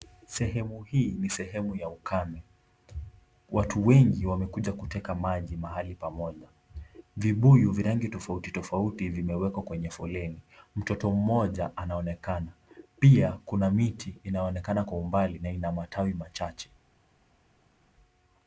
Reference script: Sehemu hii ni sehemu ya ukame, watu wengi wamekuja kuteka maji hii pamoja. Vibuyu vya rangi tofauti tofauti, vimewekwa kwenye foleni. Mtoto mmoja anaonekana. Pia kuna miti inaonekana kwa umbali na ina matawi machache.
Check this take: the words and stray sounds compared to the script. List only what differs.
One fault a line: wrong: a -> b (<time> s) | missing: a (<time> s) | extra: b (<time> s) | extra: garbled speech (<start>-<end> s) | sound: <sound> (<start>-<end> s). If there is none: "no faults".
wrong: hii -> mahali (5.6 s)